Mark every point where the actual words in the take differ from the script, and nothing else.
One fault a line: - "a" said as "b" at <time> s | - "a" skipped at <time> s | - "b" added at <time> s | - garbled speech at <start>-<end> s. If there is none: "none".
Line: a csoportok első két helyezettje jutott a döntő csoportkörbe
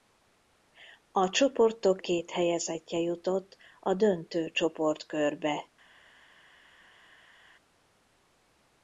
- "első" skipped at 2.0 s